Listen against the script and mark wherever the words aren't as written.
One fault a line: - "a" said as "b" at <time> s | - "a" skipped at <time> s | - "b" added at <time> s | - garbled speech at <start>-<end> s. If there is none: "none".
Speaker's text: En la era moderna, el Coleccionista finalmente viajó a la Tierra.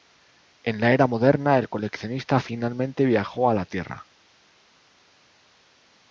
none